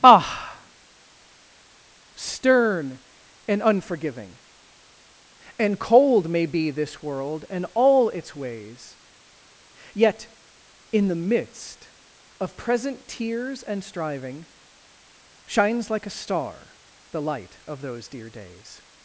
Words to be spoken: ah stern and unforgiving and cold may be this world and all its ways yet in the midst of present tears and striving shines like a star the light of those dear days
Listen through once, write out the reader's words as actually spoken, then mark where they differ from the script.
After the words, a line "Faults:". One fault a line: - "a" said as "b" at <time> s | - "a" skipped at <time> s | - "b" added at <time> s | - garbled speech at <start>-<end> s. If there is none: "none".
ah stern and unforgiving and cold may be this world and all its ways yet in the midst of present tears and striving shines like a star the light of those dear days
Faults:
none